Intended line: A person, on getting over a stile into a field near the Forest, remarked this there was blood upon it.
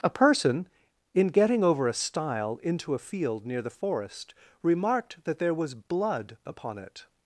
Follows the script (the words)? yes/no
no